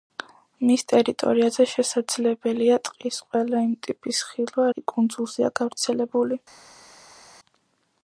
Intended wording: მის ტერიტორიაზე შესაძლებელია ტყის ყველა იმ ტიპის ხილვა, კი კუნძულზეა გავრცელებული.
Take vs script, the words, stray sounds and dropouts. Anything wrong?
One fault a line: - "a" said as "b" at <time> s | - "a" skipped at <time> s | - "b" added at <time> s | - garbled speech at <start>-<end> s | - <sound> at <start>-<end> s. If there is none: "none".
none